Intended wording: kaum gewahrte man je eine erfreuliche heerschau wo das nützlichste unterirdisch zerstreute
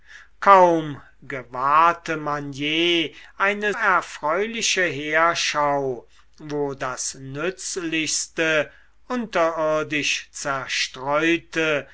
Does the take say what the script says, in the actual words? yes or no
yes